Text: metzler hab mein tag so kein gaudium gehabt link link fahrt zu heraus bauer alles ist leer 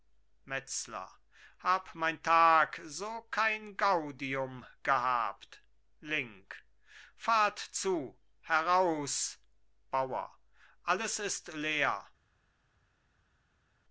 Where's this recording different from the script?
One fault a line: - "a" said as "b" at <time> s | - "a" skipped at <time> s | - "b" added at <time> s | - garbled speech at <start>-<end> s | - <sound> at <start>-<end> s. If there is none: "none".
- "link" skipped at 6.6 s